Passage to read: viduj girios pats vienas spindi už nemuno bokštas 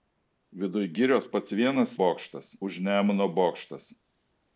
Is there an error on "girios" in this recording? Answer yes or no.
no